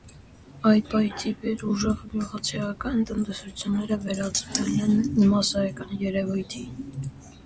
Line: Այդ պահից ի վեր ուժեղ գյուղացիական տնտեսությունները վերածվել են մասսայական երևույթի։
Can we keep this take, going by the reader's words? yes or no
yes